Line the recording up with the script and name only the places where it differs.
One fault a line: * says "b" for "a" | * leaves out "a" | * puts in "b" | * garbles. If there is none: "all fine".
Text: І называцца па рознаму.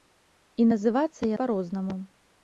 all fine